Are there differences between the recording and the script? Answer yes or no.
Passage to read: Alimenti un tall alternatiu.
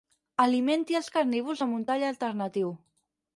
yes